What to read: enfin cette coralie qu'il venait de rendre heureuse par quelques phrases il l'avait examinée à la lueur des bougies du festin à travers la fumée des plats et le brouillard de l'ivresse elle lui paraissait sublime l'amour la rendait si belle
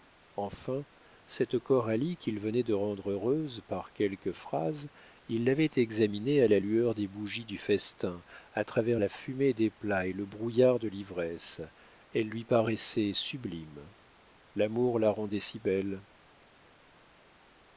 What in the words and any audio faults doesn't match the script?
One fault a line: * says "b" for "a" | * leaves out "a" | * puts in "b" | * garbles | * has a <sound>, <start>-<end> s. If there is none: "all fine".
all fine